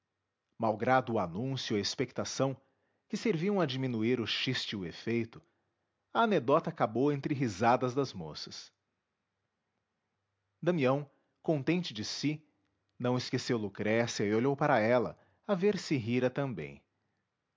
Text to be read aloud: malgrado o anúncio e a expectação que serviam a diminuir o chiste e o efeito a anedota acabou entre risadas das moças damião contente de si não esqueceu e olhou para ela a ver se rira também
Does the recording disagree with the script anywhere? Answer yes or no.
yes